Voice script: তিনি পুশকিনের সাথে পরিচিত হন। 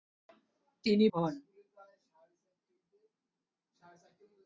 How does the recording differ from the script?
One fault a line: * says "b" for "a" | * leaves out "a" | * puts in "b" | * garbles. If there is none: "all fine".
* leaves out "পুশকিনের সাথে পরিচিত"